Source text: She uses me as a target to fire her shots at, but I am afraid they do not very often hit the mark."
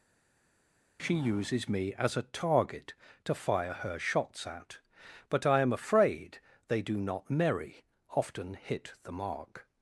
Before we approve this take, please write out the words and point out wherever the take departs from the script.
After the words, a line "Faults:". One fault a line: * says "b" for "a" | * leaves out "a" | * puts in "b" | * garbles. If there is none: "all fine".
She uses me as a target to fire her shots at, but I am afraid they do not merry often hit the mark."
Faults:
* says "merry" for "very"